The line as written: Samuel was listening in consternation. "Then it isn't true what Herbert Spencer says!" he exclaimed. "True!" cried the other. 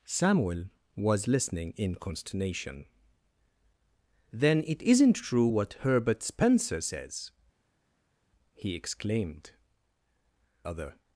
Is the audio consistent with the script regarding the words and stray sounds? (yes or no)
no